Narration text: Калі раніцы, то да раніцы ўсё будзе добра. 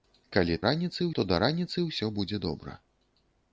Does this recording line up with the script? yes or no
yes